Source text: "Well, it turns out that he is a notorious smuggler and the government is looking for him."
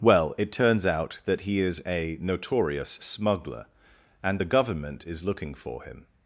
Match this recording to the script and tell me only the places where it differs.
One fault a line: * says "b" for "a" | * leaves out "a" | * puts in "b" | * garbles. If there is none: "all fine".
all fine